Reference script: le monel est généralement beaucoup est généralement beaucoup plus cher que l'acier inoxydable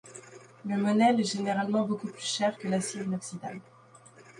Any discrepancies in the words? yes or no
yes